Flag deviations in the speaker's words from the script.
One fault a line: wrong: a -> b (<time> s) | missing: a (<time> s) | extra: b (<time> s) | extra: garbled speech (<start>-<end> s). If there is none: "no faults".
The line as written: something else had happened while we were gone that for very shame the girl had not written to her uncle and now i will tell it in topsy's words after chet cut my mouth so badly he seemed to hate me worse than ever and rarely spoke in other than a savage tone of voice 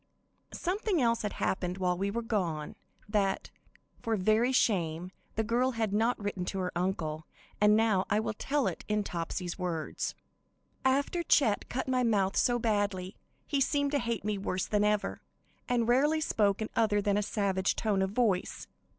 no faults